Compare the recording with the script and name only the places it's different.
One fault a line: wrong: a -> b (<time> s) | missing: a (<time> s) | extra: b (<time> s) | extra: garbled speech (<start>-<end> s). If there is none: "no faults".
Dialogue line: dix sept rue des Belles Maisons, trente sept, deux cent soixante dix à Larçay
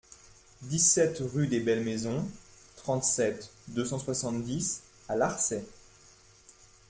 no faults